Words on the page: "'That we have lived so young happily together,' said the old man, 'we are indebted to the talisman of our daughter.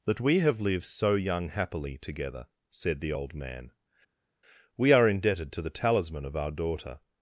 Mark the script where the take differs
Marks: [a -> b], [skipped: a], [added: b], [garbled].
"'That we have lived so young happily together,' said the old man, 'we are indebted to the talisman of our daughter.